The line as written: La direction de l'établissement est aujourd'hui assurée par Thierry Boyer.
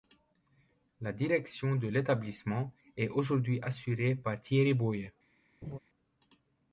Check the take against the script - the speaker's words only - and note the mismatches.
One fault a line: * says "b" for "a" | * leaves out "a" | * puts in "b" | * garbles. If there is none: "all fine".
all fine